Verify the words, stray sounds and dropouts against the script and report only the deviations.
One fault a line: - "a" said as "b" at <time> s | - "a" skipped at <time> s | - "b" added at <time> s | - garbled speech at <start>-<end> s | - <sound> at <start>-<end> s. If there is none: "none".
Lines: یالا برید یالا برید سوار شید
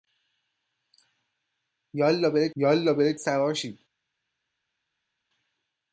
none